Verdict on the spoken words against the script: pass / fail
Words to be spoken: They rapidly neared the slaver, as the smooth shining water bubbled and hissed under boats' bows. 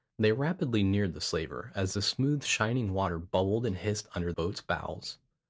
pass